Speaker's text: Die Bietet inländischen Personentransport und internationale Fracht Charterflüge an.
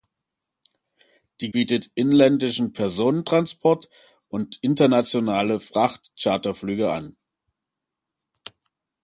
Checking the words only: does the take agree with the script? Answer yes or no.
yes